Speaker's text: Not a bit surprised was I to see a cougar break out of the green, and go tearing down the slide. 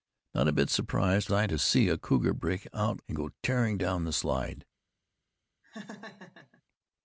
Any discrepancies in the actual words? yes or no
yes